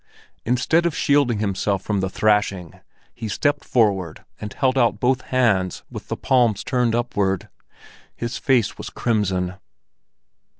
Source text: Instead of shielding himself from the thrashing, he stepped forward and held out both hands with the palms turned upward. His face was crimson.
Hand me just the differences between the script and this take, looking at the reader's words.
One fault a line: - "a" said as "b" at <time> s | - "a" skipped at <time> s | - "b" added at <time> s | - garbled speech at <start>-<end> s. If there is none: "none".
none